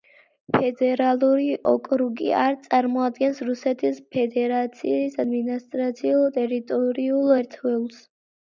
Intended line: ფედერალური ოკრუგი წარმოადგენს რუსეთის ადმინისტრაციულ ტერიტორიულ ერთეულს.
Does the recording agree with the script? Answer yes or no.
no